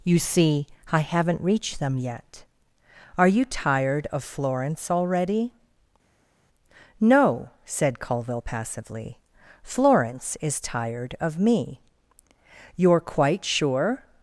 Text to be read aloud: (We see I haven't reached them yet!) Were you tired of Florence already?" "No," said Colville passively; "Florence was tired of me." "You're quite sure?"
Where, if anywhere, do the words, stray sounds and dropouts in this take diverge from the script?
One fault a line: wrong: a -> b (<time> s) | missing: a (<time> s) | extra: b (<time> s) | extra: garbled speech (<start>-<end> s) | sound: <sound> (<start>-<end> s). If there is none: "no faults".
wrong: We -> You (0.0 s)
wrong: Were -> Are (3.2 s)
wrong: was -> is (10.4 s)